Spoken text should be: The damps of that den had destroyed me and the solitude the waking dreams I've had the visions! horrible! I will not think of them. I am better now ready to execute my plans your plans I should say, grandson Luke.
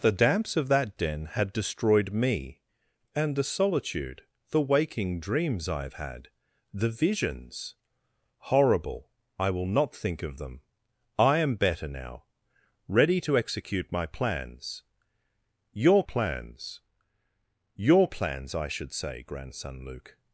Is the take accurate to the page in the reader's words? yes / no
no